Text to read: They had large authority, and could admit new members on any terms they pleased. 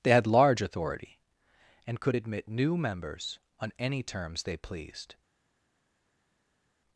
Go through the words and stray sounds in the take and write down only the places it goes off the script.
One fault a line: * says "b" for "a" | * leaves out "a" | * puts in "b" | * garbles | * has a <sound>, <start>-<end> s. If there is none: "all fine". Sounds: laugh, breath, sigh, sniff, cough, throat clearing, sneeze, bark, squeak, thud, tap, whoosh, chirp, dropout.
all fine